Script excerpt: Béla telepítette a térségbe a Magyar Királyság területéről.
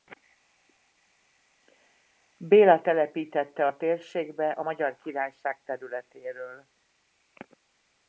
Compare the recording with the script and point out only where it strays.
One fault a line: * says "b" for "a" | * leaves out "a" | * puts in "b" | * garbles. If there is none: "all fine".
all fine